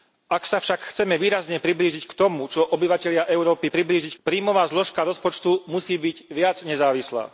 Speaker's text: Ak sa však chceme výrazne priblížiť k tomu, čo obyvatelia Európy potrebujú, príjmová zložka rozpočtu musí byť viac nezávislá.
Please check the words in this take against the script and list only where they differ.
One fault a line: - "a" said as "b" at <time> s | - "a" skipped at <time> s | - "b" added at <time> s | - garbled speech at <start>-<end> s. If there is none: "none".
- "potrebujú" said as "priblížiť" at 3.7 s